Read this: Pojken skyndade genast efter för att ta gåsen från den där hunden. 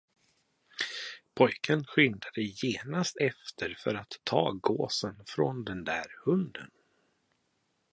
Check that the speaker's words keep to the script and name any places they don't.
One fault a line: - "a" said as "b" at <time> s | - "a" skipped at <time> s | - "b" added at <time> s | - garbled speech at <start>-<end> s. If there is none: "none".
none